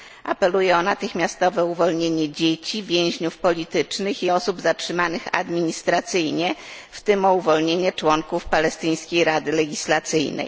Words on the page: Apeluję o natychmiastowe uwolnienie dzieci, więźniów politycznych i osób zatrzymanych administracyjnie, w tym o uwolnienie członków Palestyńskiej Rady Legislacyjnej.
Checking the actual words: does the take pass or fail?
pass